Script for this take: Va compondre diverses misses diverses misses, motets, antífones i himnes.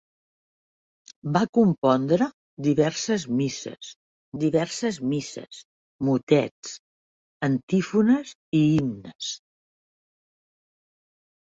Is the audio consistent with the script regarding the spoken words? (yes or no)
yes